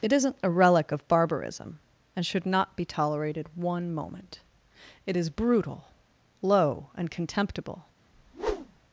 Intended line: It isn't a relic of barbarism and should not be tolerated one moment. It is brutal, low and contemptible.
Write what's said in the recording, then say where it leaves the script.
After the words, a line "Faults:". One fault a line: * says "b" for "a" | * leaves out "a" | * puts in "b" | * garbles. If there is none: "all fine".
It isn't a relic of barbarism and should not be tolerated one moment. It is brutal, low and contemptible.
Faults:
all fine